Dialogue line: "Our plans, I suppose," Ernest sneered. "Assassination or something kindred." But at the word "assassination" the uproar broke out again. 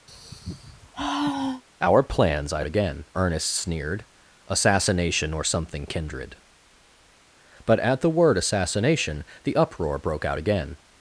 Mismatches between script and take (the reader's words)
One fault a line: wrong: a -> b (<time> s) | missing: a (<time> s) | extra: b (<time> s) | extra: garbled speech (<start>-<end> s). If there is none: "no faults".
wrong: suppose -> again (2.6 s)